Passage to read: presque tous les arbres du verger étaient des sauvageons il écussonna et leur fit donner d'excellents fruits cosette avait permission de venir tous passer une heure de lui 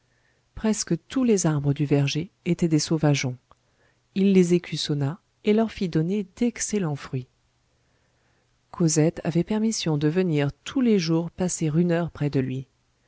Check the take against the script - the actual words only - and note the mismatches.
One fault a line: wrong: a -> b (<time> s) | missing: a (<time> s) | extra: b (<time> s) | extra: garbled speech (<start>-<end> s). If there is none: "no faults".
extra: les (4.3 s)
extra: les jours (10.8 s)
extra: près (12.1 s)